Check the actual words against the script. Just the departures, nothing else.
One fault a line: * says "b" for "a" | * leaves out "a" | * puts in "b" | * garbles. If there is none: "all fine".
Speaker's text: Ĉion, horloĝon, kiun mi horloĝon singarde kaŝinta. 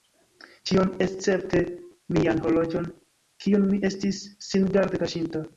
* puts in "escepte mian"
* says "estis" for "horloĝon"